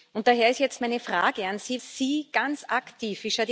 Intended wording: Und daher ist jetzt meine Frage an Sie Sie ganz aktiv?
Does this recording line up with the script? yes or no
yes